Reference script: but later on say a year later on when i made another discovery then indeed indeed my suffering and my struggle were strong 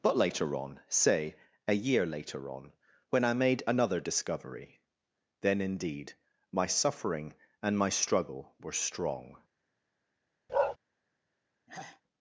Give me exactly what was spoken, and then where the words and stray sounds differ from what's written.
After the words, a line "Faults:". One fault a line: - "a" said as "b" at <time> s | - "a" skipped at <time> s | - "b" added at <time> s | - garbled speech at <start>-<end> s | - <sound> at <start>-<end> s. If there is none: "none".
but later on say a year later on when i made another discovery then indeed my suffering and my struggle were strong
Faults:
- "indeed" skipped at 6.1 s
- bark at 10.5-10.8 s
- sigh at 11.7-12.0 s